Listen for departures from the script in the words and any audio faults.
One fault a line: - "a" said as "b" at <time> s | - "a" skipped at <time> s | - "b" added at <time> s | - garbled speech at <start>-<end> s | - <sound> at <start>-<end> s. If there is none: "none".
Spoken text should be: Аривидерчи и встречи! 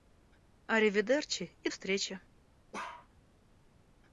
- bark at 2.7-3.1 s